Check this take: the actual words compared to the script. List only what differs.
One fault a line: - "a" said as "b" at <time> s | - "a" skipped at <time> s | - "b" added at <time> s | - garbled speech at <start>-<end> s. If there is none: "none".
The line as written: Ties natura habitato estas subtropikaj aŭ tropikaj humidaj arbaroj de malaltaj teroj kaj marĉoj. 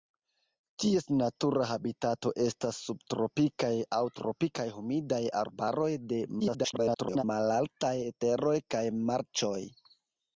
- garbled speech at 6.4-7.2 s